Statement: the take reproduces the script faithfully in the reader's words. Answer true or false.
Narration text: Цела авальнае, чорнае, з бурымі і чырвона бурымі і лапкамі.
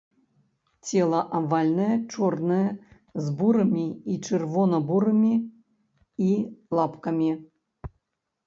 true